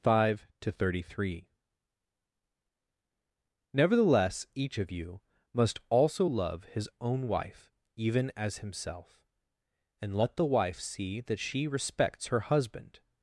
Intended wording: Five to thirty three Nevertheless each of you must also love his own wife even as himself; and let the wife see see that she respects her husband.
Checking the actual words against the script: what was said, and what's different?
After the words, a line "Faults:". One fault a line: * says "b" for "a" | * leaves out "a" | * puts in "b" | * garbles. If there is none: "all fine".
Five to thirty three Nevertheless each of you must also love his own wife even as himself; and let the wife see that she respects her husband.
Faults:
* leaves out "see"